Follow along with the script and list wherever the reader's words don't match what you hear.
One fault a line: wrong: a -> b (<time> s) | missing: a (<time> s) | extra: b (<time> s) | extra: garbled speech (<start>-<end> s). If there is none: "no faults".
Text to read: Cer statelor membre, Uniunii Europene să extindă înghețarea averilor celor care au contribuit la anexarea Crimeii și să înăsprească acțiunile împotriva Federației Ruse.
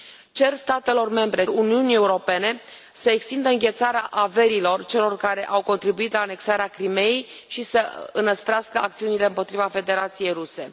no faults